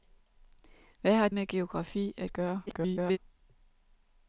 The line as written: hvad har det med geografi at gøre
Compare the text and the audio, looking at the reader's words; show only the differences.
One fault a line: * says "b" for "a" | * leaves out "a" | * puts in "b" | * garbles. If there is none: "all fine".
* leaves out "det"
* garbles